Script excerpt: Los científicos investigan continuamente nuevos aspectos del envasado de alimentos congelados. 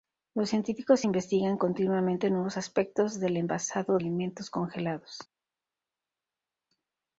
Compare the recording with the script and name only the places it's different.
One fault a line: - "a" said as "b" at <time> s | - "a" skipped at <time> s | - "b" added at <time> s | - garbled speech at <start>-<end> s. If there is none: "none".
- "de" skipped at 4.0 s